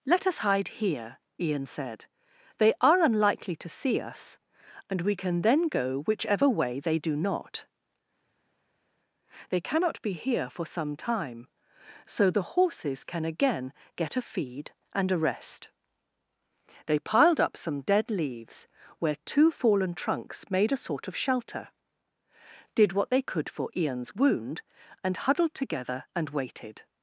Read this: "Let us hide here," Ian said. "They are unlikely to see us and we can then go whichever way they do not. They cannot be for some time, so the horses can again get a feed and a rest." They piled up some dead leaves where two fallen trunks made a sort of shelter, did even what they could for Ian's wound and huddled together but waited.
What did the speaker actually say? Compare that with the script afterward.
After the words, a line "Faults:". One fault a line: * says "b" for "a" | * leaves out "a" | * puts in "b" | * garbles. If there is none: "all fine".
"Let us hide here," Ian said. "They are unlikely to see us and we can then go whichever way they do not. They cannot be here for some time, so the horses can again get a feed and a rest." They piled up some dead leaves where two fallen trunks made a sort of shelter, did what they could for Ian's wound and huddled together and waited.
Faults:
* puts in "here"
* leaves out "even"
* says "and" for "but"